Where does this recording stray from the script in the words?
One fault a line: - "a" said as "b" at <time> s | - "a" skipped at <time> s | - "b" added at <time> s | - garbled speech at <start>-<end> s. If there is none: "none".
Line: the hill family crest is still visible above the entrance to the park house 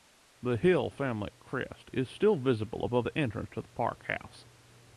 none